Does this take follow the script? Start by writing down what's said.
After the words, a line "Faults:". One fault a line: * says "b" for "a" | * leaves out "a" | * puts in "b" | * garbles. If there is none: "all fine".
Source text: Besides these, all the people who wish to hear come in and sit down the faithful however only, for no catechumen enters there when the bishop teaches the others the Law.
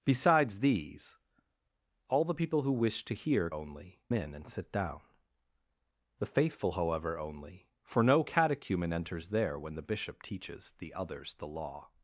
Besides these, all the people who wish to hear only in and sit down the faithful however only, for no catechumen enters there when the bishop teaches the others the Law.
Faults:
* says "only" for "come"